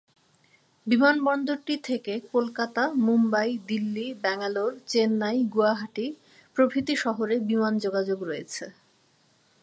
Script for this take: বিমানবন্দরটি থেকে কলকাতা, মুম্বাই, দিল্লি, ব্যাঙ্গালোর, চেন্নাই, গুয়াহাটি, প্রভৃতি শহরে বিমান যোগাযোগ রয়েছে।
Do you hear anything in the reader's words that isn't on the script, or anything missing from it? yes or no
no